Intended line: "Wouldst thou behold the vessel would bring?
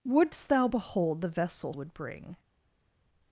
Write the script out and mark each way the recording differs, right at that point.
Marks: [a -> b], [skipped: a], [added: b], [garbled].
"Wouldst thou behold the vessel would bring?